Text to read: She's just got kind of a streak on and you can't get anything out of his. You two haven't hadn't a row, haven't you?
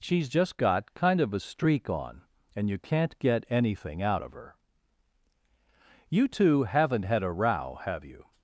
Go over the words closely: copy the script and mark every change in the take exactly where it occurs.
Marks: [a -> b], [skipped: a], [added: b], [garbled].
She's just got kind of a streak on and you can't get anything out of [his. -> her] You two haven't [hadn't -> had] a row, [haven't -> have] you?